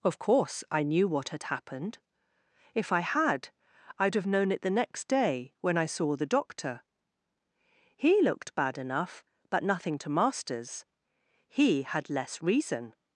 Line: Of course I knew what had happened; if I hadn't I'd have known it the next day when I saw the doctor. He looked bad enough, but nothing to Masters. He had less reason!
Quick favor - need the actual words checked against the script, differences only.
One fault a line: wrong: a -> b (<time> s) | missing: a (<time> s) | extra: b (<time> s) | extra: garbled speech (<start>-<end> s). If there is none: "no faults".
wrong: hadn't -> had (3.0 s)